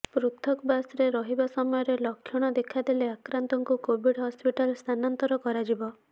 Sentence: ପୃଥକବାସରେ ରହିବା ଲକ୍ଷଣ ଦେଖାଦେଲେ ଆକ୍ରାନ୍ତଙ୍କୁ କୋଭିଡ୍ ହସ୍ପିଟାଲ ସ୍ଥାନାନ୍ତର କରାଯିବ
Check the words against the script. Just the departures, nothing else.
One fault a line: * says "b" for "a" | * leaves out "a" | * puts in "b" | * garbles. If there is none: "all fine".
* puts in "ସମୟରେ"